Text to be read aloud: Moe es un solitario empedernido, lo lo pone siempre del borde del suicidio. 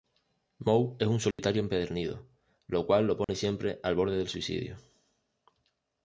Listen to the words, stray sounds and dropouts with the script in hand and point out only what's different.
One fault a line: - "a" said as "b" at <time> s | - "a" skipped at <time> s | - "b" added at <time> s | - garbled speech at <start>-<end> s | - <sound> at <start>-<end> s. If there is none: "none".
- dropout at 1.3-1.4 s
- "cual" added at 2.9 s
- dropout at 3.2-3.3 s
- "del" said as "al" at 3.8 s